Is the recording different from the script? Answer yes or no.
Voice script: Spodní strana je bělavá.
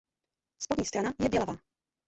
no